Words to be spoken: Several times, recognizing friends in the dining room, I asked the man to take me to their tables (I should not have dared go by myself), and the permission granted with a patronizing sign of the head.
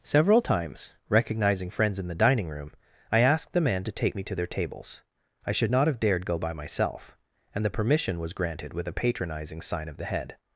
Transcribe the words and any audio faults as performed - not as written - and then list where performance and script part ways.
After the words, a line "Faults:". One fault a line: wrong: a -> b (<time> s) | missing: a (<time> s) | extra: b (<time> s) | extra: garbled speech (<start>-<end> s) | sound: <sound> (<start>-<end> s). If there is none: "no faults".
Several times, recognizing friends in the dining room, I asked the man to take me to their tables (I should not have dared go by myself), and the permission was granted with a patronizing sign of the head.
Faults:
extra: was (8.2 s)